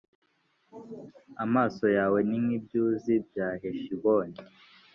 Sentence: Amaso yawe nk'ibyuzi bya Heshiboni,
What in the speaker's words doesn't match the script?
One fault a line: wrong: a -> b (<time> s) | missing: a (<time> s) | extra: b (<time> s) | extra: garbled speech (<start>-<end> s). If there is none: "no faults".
extra: ni (2.3 s)